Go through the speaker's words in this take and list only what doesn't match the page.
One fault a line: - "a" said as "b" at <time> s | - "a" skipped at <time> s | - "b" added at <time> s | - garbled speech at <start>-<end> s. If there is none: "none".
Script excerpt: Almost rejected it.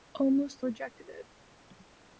none